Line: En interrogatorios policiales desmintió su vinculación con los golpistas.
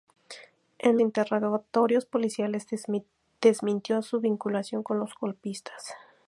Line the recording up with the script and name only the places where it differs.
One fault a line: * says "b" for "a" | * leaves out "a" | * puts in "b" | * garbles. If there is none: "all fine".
all fine